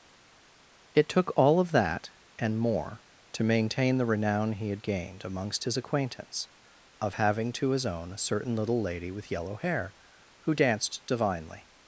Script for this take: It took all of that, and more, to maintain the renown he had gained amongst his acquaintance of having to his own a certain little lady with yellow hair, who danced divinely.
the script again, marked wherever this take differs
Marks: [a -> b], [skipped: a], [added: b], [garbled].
It took all of that, and more, to maintain the renown he had gained amongst his acquaintance of having to his own a certain little lady with yellow hair, who danced divinely.